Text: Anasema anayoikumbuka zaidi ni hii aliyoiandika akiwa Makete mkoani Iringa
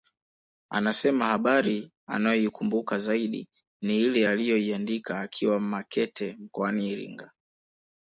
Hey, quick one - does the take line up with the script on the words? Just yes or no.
no